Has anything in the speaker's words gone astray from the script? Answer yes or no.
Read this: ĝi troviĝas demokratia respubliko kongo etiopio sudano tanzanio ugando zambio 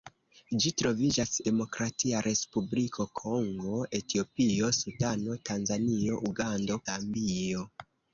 no